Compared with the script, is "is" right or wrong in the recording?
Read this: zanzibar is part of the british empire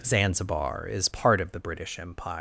right